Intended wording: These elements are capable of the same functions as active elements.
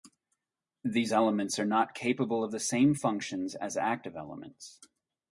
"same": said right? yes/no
yes